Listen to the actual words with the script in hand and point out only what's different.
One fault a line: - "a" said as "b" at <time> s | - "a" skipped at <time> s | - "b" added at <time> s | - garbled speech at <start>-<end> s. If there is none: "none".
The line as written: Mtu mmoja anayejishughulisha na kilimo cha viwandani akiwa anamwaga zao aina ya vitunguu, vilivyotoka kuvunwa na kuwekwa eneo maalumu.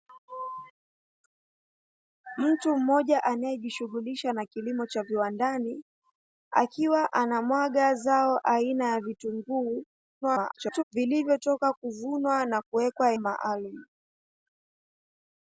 - garbled speech at 10.2-10.8 s
- "eneo" skipped at 13.1 s